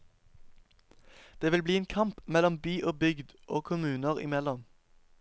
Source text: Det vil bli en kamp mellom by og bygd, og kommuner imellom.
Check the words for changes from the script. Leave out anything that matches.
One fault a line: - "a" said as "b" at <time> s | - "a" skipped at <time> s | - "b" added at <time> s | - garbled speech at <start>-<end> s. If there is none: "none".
none